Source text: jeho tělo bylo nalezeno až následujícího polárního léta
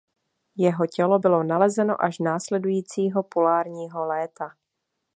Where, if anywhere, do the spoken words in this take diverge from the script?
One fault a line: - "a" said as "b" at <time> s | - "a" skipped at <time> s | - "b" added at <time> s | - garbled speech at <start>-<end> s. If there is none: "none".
none